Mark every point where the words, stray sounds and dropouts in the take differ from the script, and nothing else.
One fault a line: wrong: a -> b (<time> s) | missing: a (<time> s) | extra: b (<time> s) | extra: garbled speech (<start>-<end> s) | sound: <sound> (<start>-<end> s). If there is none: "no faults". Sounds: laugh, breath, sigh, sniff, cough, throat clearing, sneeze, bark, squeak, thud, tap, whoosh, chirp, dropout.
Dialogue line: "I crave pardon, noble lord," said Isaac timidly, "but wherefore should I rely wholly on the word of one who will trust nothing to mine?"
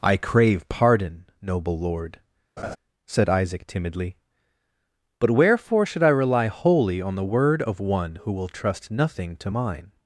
sound: laugh (2.6-2.8 s)